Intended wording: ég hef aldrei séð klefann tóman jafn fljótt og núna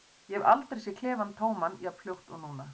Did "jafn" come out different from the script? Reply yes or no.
no